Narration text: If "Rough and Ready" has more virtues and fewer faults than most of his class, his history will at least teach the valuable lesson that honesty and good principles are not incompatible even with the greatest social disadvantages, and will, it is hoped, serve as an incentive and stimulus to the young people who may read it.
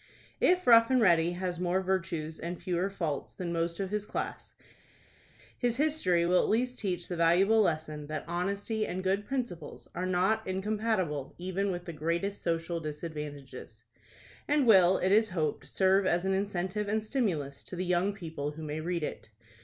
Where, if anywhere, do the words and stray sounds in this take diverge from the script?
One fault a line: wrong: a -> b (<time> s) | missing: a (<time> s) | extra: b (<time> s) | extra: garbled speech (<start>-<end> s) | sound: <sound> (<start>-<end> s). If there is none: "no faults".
no faults